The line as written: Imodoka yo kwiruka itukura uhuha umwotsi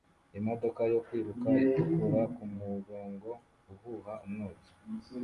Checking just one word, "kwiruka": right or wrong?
right